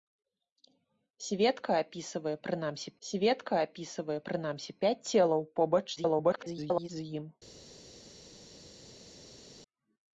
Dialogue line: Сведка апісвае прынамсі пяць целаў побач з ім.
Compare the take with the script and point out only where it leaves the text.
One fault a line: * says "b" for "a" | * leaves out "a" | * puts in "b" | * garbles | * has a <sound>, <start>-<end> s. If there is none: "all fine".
* puts in "сведка апісвае прынамсі"
* garbles